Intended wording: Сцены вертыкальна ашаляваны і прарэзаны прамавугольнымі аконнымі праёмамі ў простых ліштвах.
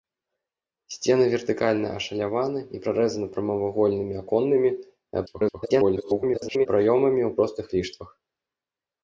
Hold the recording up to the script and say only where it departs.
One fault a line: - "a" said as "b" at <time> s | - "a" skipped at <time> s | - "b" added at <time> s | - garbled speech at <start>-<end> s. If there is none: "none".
- garbled speech at 5.3-6.7 s